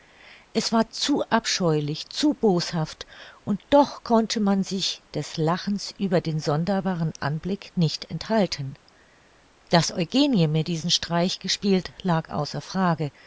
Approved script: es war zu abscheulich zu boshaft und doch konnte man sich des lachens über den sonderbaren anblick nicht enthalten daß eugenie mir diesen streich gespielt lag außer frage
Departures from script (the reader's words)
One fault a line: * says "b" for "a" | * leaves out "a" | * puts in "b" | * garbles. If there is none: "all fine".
all fine